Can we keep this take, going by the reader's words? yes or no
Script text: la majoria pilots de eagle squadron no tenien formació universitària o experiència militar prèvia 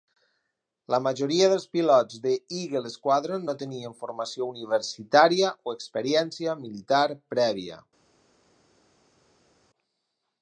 no